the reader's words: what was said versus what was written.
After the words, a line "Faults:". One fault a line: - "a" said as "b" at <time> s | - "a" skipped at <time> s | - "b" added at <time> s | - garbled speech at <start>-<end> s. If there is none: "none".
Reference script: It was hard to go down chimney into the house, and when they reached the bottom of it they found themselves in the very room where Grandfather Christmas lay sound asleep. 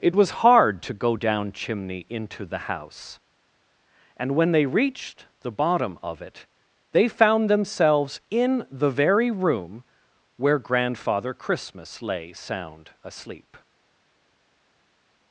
It was hard to go down chimney into the house, and when they reached the bottom of it they found themselves in the very room where Grandfather Christmas lay sound asleep.
Faults:
none